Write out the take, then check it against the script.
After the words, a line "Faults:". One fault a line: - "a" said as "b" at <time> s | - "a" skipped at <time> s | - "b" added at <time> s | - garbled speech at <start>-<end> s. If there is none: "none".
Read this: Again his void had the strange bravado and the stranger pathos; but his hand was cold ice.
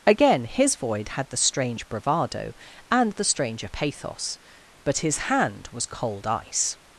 Again his void had the strange bravado and the stranger pathos; but his hand was cold ice.
Faults:
none